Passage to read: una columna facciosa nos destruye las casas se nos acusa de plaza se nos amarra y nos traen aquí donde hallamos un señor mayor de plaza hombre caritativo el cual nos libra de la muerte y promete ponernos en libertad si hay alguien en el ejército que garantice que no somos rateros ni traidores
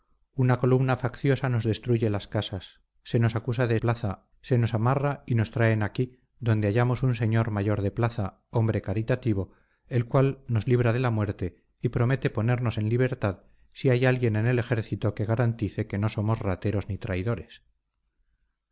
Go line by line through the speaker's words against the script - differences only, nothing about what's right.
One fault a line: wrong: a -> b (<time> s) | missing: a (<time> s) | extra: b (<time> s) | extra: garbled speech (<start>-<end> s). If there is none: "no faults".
no faults